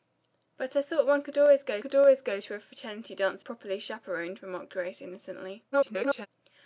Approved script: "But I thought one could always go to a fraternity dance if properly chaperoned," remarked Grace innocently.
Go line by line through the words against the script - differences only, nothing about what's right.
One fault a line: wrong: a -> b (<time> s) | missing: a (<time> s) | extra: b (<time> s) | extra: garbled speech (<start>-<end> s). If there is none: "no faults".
extra: could always go (1.8 s)
missing: if (3.4 s)
extra: garbled speech (5.7-6.3 s)